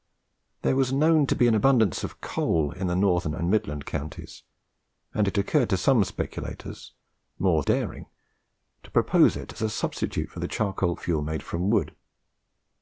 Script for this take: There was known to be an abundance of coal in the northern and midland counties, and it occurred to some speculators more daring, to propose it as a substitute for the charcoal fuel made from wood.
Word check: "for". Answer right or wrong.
right